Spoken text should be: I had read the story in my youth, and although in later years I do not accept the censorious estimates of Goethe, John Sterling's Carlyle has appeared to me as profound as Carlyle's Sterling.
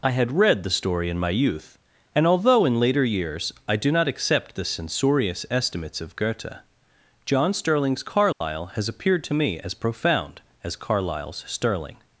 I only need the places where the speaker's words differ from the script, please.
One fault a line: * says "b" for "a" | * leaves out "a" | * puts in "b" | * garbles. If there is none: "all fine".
all fine